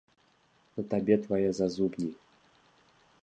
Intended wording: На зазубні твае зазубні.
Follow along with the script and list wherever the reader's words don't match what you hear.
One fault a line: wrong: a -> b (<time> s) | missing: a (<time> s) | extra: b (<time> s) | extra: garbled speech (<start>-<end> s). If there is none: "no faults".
wrong: зазубні -> табе (0.9 s)